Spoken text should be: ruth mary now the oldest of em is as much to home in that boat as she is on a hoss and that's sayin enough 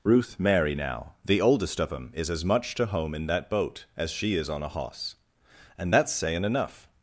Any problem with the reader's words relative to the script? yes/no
no